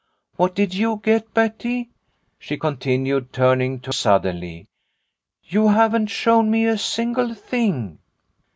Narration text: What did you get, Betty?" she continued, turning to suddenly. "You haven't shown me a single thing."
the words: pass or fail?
pass